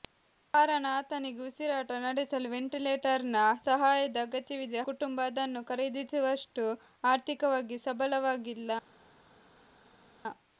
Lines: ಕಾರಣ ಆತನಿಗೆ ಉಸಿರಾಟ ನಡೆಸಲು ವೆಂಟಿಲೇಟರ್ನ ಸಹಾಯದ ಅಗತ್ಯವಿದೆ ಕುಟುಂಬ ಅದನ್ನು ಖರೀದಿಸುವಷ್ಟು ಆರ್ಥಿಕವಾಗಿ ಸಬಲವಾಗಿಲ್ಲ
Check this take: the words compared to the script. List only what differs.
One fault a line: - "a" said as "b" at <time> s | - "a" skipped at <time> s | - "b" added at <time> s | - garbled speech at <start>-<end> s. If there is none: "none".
none